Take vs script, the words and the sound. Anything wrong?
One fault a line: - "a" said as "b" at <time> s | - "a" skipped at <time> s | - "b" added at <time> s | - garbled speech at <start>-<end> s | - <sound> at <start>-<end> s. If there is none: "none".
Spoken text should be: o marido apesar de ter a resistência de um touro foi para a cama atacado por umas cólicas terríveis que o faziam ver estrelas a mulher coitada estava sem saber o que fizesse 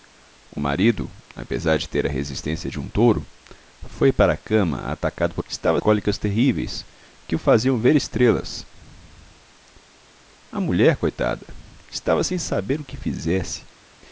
- "umas" said as "estava" at 5.5 s